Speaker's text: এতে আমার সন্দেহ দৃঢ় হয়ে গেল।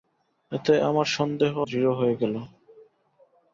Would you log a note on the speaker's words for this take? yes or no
no